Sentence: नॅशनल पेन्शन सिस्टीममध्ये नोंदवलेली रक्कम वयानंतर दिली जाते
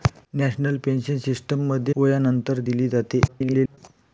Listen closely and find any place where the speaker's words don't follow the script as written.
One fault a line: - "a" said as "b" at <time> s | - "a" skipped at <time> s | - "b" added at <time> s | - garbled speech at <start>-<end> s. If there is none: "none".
- "नोंदवलेली रक्कम" skipped at 1.9 s
- garbled speech at 3.3-3.8 s